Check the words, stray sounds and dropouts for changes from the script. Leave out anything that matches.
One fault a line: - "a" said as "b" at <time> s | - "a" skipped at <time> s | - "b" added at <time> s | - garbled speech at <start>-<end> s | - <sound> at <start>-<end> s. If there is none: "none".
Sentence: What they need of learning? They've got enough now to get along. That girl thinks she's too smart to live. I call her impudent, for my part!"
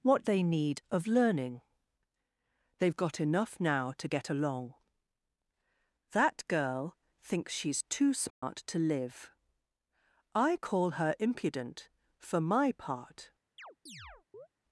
- dropout at 8.3-8.4 s
- chirp at 13.6-14.5 s